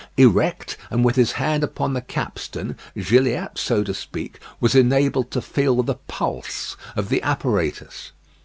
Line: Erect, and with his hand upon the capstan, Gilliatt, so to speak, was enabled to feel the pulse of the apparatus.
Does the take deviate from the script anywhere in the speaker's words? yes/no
no